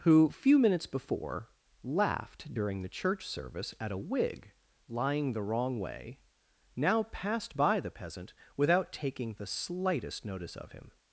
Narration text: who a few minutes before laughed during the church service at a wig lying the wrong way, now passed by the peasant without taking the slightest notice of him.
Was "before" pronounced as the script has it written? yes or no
yes